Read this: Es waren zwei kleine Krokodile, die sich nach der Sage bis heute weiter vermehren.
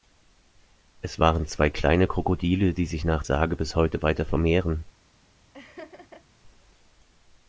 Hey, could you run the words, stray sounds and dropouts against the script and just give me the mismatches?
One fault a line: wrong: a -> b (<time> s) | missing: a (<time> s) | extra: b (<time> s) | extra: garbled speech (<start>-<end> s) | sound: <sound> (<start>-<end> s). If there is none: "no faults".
missing: der (3.2 s)
sound: laugh (5.5-6.2 s)